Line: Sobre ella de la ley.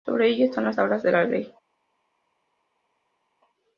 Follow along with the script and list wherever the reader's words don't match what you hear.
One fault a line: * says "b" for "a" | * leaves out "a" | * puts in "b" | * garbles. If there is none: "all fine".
* puts in "están las tablas"